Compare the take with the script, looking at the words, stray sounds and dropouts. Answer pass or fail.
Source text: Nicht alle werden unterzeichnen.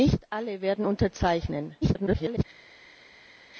fail